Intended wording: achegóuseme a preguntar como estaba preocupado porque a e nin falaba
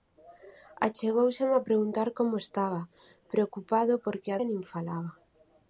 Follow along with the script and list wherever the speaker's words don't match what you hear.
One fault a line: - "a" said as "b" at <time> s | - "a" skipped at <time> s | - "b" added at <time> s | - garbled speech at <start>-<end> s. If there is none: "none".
none